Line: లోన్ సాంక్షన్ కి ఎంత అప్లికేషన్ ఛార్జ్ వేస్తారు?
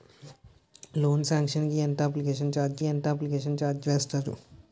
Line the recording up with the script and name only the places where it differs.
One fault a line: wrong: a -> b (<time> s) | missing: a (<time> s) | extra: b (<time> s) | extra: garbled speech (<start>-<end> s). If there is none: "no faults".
extra: ఎంత అప్లికేషన్ ఛార్జ్ (2.8 s)